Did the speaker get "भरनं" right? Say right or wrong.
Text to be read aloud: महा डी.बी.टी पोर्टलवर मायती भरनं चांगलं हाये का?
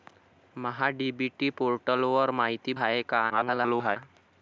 wrong